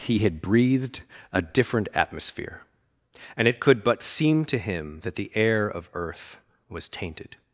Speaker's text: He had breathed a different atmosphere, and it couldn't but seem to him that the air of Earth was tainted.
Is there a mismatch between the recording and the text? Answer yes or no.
yes